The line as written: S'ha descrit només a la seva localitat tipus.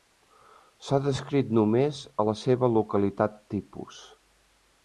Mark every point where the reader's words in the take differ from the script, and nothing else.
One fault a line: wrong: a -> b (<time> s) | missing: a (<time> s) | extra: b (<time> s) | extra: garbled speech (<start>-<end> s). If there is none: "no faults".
no faults